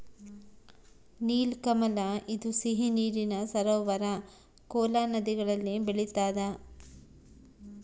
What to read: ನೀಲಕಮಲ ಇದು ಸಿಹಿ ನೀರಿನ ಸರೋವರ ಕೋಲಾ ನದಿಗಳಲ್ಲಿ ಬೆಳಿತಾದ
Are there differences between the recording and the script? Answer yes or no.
no